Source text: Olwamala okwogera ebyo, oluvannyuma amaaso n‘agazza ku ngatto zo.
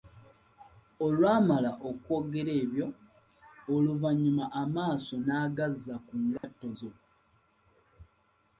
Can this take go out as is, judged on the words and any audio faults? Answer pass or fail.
fail